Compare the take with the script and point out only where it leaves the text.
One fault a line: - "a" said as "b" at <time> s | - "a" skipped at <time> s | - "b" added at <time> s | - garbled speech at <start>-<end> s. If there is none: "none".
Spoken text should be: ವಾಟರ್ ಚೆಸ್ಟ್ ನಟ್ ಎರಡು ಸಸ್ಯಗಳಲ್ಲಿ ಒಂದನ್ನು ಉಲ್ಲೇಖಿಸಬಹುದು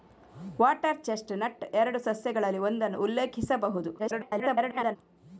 - garbled speech at 4.0-5.0 s